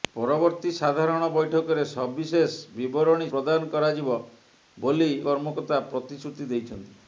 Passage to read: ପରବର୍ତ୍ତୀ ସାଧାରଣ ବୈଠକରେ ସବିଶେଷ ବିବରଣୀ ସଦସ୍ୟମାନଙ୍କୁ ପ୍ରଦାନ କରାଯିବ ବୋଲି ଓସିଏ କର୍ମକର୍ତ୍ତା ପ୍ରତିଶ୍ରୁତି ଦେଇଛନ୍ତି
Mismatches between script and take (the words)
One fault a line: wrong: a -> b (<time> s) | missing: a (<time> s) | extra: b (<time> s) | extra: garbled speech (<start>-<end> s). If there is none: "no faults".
missing: ସଦସ୍ୟମାନଙ୍କୁ (3.3 s)
missing: ଓସିଏ (5.1 s)